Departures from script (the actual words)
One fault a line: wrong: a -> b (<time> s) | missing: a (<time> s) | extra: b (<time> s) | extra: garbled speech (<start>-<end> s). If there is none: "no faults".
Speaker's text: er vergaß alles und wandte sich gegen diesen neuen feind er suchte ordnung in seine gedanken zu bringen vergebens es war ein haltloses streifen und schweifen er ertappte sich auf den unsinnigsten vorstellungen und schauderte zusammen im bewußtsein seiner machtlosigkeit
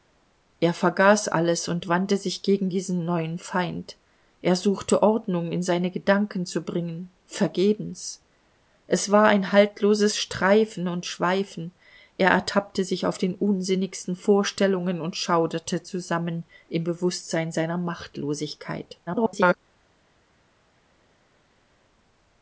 extra: garbled speech (19.1-19.5 s)